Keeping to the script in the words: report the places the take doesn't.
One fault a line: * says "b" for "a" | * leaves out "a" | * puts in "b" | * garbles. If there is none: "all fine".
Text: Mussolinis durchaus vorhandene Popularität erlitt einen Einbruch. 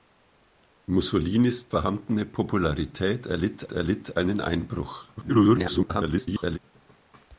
* leaves out "durchaus"
* puts in "erlitt"
* garbles